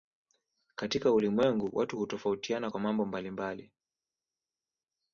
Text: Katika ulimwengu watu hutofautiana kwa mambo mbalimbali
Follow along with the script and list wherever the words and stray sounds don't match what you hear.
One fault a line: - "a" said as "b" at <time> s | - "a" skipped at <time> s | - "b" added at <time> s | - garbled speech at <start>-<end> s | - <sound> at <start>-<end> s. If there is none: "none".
none